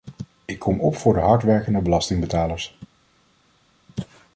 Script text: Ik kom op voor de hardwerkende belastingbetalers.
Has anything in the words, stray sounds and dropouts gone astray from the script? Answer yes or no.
no